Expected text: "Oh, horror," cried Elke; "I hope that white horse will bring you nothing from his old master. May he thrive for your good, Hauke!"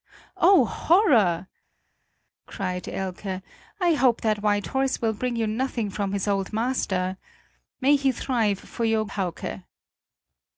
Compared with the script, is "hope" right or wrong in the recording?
right